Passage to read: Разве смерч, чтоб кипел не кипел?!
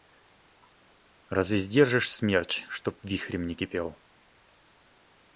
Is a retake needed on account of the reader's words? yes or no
yes